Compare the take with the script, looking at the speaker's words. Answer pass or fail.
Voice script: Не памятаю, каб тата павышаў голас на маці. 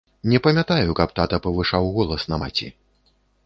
pass